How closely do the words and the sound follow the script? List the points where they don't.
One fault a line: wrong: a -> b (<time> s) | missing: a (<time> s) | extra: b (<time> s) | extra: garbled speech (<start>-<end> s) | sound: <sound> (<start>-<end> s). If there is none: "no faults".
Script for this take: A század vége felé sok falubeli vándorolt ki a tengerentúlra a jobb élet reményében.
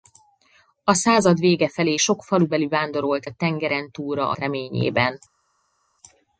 missing: ki (3.2 s)
missing: jobb élet (4.4 s)